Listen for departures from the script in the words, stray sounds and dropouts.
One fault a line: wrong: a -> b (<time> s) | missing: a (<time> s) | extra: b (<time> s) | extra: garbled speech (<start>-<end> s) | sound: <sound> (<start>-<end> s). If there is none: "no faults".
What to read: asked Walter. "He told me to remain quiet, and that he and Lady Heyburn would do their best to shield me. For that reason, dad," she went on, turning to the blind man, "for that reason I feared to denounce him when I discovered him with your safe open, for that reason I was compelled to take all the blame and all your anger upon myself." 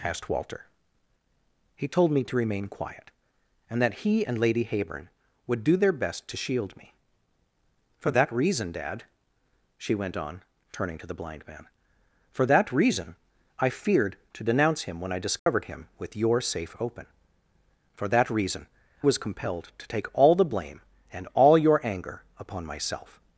sound: dropout (15.4-15.5 s)
missing: I (18.7 s)